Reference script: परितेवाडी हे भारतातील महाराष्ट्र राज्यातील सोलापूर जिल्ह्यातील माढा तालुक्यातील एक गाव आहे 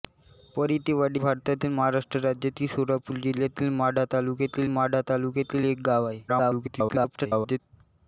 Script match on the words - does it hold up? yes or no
no